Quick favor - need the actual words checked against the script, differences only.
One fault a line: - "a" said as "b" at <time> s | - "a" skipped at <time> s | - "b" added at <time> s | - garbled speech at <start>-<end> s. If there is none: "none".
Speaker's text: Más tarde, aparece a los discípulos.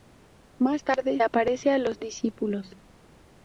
none